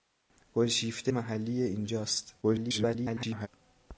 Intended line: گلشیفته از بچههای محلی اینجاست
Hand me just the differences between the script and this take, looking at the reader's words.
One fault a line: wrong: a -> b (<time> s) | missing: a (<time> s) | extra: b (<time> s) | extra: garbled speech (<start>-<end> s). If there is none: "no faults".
missing: از بچههای (1.1 s)
extra: garbled speech (2.4-3.5 s)